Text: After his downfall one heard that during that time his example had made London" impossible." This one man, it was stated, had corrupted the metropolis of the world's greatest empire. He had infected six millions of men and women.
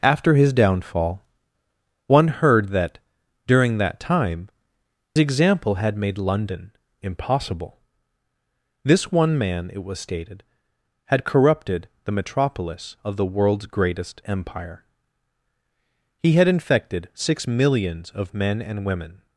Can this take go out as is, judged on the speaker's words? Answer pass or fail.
fail